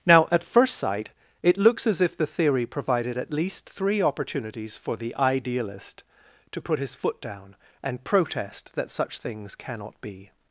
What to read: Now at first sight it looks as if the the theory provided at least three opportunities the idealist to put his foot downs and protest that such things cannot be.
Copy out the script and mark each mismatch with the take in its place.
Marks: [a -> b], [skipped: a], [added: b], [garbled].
Now at first sight it looks as if the [skipped: the] theory provided at least three opportunities [added: for] the idealist to put his foot [downs -> down] and protest that such things cannot be.